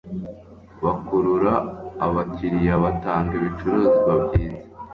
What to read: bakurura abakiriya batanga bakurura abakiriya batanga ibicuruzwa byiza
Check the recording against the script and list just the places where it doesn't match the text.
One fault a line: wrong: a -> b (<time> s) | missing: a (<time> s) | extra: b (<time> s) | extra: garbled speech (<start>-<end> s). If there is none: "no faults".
missing: bakurura abakiriya batanga (3.3 s)